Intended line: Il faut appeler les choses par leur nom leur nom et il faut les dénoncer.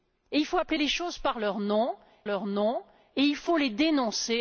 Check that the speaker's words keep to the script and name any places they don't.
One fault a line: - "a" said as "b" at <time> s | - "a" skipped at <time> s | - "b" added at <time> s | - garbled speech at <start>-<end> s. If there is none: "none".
none